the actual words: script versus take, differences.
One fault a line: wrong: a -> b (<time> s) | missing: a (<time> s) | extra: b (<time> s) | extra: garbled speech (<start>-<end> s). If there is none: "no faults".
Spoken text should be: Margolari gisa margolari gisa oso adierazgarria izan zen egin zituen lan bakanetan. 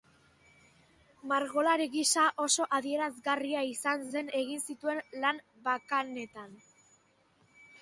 missing: margolari gisa (2.2 s)